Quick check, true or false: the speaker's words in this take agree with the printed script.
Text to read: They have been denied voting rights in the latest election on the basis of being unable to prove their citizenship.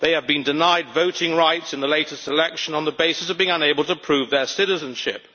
true